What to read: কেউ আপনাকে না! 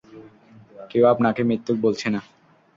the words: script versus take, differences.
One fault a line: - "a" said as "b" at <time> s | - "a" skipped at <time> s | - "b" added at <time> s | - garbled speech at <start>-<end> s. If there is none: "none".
- "মিথ্যুক বলছে" added at 1.4 s